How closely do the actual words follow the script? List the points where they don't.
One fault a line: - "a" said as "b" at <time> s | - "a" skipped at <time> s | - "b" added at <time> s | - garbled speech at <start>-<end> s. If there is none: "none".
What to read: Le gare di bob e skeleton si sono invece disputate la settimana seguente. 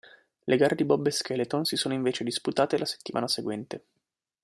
none